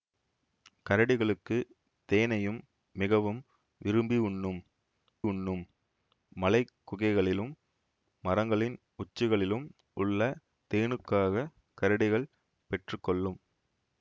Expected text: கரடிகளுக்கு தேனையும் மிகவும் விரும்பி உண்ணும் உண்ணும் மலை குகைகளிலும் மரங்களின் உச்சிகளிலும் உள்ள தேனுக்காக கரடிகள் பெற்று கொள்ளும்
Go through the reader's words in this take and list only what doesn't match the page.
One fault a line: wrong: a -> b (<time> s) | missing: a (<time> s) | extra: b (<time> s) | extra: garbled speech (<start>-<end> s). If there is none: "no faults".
no faults